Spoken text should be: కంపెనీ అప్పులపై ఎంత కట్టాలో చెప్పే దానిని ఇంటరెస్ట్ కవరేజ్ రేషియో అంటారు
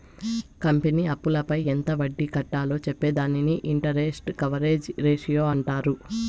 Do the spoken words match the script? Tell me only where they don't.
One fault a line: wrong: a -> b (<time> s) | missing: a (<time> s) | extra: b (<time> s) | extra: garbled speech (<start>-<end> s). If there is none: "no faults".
extra: వడ్డీ (2.0 s)